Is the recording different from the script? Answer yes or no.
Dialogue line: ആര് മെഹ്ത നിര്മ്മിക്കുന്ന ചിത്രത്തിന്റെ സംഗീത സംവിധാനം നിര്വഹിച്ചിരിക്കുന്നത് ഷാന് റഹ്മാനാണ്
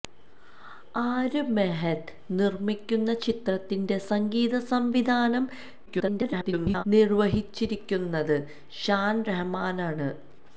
yes